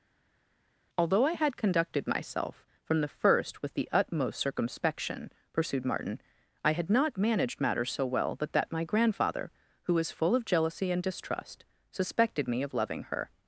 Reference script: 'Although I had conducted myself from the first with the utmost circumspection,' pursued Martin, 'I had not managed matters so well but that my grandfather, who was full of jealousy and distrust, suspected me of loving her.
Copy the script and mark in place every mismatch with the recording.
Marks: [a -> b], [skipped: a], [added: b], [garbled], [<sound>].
'Although I had conducted myself from the first with the utmost circumspection,' pursued Martin, 'I had not managed matters so well but that my grandfather, who was full of jealousy and distrust, suspected me of loving her.